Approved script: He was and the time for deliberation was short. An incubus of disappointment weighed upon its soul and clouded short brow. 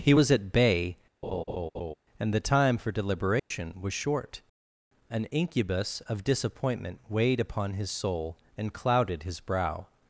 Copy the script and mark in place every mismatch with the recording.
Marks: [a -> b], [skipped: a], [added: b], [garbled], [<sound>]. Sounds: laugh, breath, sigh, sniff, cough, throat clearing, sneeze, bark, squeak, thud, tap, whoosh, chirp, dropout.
He was [added: at bay] [laugh] and the time for deliberation [dropout] was short. An incubus of disappointment weighed upon [its -> his] soul and clouded [short -> his] brow.